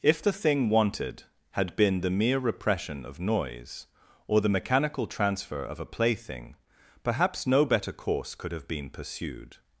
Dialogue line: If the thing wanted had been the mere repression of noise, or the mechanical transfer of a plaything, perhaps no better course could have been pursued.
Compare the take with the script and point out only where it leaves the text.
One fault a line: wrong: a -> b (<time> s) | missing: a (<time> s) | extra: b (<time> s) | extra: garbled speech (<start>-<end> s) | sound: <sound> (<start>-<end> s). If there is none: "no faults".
no faults